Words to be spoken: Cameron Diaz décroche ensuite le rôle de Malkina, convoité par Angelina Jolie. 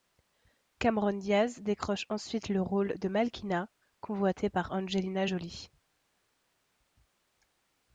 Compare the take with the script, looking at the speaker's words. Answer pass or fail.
pass